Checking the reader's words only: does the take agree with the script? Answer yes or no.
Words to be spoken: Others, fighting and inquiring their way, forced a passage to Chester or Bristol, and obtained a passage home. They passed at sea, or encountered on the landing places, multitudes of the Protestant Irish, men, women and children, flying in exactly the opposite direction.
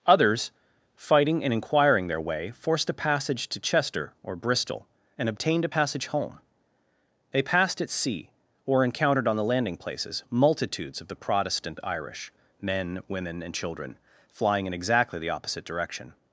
yes